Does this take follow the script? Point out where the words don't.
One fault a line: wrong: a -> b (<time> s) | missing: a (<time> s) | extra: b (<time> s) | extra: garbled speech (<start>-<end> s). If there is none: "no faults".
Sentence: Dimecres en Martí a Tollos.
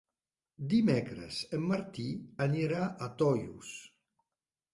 extra: anirà (2.5 s)